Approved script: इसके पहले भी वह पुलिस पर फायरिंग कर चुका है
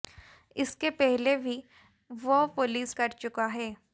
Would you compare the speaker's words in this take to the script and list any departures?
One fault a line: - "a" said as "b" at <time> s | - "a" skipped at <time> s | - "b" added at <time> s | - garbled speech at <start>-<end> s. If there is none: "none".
- "पर फायरिंग" skipped at 2.9 s